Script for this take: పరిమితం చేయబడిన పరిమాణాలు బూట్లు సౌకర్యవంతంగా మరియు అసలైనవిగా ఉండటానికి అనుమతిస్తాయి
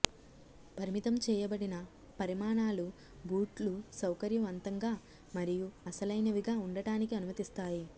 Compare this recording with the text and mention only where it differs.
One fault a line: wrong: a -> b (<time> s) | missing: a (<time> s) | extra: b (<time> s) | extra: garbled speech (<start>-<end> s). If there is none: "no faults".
no faults